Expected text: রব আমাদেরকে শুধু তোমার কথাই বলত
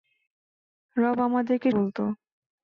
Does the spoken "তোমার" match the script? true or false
false